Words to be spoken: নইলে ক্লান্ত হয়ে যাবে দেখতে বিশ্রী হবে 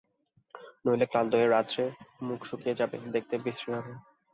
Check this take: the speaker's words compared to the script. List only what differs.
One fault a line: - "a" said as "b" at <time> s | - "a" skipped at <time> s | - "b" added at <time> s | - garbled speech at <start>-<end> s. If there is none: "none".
- "রাত্রে মুখ শুকিয়ে" added at 1.5 s